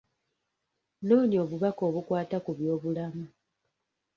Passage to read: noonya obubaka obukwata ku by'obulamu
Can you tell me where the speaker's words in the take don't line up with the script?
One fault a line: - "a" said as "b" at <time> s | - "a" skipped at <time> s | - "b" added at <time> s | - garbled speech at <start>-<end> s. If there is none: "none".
none